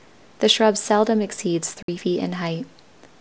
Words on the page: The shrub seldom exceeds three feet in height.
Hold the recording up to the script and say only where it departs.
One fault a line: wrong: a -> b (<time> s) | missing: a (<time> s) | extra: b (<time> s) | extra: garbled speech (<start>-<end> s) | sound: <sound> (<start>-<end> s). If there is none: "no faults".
sound: dropout (1.8-1.9 s)